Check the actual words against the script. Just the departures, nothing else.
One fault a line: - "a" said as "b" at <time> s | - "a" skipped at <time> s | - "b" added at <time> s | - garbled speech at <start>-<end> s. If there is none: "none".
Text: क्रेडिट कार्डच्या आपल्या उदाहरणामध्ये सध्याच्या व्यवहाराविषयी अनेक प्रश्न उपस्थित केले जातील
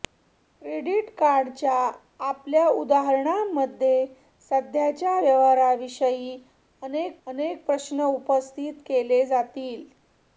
- "अनेक" added at 7.3 s